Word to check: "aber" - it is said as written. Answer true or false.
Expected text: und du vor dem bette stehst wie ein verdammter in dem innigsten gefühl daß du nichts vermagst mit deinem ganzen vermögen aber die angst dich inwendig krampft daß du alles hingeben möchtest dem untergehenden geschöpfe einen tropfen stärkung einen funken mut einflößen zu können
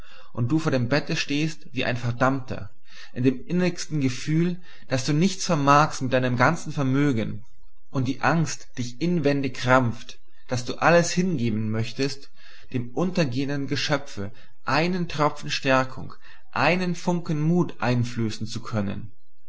false